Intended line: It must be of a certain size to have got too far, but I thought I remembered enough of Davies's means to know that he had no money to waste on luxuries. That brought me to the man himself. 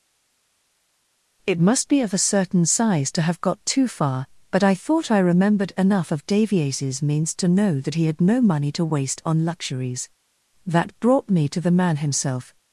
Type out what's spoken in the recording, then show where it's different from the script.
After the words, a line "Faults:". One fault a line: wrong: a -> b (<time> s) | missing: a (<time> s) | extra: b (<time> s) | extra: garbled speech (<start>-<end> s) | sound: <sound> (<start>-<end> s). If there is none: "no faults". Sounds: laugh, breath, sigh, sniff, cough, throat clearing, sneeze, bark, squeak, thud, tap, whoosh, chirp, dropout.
It must be of a certain size to have got too far, but I thought I remembered enough of Davies's means to know that he had no money to waste on luxuries. That brought me to the man himself.
Faults:
no faults